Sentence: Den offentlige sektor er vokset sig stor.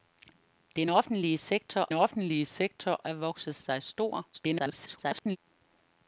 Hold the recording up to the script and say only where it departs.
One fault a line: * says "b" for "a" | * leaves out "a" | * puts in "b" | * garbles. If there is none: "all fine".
* puts in "offentlige sektor"
* garbles